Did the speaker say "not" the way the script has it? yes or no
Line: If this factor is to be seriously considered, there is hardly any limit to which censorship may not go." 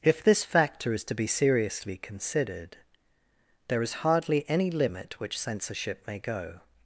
no